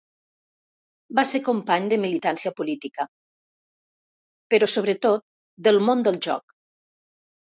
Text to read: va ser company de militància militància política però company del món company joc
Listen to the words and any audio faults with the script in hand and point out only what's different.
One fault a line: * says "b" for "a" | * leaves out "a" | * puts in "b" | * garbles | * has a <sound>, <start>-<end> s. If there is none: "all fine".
* leaves out "militància"
* says "sobretot" for "company"
* says "del" for "company"